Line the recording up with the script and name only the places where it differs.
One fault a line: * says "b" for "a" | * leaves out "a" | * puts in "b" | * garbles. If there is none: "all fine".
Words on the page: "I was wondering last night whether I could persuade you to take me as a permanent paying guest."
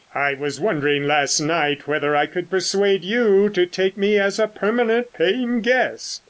all fine